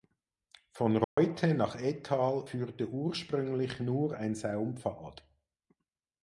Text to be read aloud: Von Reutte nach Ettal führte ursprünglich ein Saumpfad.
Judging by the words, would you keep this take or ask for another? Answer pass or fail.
fail